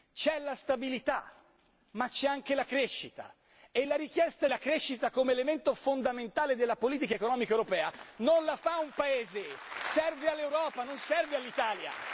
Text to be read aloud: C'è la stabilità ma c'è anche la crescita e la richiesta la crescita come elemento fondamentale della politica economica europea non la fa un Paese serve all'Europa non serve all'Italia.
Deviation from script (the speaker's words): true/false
false